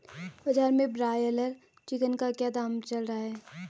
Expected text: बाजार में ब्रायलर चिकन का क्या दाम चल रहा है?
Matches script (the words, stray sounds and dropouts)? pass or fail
pass